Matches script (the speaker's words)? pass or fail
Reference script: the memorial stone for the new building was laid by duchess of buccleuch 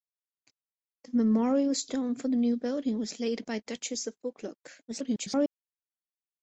fail